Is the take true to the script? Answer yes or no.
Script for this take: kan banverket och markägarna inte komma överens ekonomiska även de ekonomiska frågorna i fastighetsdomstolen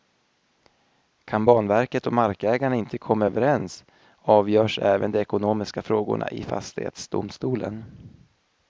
no